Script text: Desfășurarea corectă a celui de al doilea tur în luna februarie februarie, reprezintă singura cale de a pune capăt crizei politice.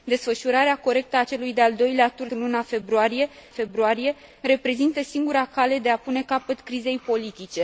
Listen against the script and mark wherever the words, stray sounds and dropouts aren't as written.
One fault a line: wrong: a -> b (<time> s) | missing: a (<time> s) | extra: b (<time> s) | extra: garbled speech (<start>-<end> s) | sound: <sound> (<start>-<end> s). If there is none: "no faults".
no faults